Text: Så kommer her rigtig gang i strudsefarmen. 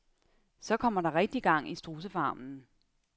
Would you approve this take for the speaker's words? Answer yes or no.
no